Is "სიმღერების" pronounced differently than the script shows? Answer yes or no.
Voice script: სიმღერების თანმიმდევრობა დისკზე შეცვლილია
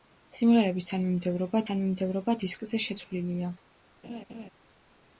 no